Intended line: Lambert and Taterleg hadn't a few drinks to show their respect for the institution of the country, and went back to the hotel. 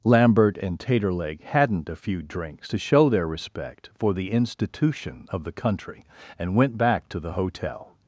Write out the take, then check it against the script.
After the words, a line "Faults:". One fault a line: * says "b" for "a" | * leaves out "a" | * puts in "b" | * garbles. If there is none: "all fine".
Lambert and Taterleg hadn't a few drinks to show their respect for the institution of the country, and went back to the hotel.
Faults:
all fine